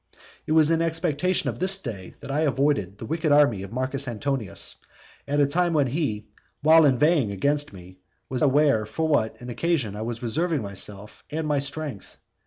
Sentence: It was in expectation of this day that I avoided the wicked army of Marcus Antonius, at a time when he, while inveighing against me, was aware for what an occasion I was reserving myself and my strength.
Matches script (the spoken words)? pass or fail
pass